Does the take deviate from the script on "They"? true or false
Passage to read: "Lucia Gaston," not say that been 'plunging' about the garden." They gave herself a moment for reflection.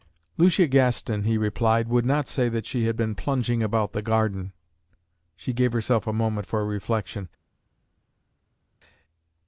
true